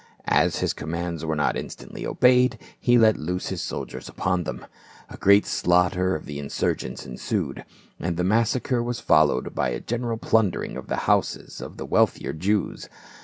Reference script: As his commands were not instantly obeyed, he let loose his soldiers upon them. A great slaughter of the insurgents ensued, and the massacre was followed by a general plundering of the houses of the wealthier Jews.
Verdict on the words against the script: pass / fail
pass